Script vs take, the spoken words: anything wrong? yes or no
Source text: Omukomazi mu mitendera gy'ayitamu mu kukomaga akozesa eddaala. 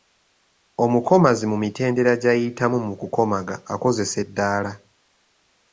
no